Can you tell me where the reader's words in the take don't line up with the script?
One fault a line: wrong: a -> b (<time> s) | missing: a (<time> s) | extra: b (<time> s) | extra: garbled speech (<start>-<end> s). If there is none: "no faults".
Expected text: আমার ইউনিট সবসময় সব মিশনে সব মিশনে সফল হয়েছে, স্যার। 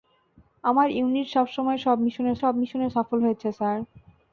no faults